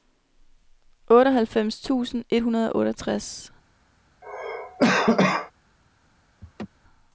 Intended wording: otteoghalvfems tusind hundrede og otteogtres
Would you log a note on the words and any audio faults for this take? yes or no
yes